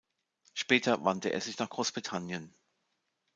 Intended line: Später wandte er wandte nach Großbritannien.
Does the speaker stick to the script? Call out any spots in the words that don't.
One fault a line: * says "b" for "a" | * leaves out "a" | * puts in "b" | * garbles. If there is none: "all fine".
* says "sich" for "wandte"